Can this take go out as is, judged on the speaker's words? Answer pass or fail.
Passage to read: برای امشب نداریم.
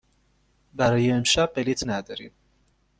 fail